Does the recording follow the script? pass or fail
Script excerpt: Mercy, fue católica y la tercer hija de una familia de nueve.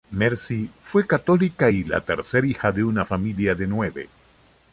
pass